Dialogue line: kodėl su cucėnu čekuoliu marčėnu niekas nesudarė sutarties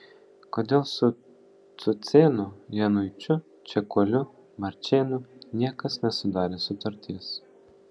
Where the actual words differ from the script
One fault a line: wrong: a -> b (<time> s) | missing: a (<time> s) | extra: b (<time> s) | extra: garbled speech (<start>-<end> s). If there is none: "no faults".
extra: januičiu (2.8 s)